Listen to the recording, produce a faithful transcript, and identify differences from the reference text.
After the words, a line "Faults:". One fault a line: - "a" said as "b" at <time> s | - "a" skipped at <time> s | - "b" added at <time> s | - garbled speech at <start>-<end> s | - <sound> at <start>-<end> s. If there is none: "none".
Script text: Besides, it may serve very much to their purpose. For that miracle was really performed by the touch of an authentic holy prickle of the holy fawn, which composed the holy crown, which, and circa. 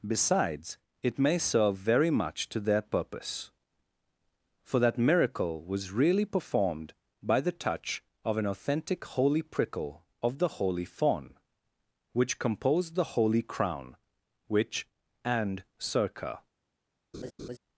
Besides, it may serve very much to their purpose. For that miracle was really performed by the touch of an authentic holy prickle of the holy fawn, which composed the holy crown, which, and circa.
Faults:
- laugh at 17.1-17.6 s